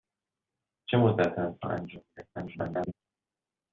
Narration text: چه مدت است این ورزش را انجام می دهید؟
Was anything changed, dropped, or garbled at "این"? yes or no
yes